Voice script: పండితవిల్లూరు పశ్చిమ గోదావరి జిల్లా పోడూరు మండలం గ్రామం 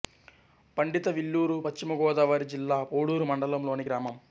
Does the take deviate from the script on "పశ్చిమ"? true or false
false